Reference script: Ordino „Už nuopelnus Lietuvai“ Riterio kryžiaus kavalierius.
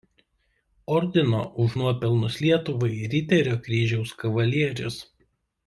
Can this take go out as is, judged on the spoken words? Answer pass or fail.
pass